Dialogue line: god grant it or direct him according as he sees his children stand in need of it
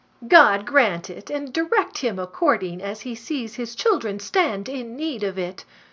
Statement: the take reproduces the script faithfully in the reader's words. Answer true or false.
false